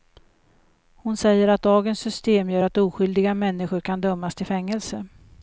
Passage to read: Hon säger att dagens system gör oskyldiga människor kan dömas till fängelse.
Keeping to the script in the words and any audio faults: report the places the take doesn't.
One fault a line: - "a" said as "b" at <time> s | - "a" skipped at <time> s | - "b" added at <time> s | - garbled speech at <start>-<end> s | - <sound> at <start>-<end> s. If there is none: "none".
- "att" added at 2.6 s